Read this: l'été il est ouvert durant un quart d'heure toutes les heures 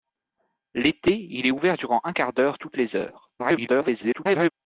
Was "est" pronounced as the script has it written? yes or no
yes